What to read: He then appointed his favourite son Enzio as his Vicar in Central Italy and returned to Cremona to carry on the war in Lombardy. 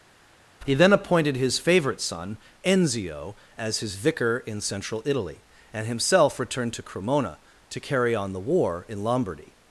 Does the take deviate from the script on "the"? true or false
false